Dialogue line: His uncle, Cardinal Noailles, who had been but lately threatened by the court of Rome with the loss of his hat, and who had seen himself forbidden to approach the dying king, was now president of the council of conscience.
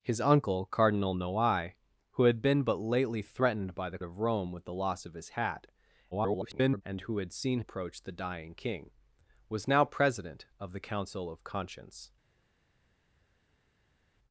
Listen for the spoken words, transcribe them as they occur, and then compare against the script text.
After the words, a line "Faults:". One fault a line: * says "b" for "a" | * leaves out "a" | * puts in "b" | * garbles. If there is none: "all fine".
His uncle, Cardinal Noailles, who had been but lately threatened by the of Rome with the loss of his hat, [garbled] and who had seen approach the dying king, was now president of the council of conscience.
Faults:
* leaves out "court"
* garbles
* leaves out "himself forbidden to"